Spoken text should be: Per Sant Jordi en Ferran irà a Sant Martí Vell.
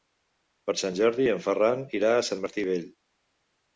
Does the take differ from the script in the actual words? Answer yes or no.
no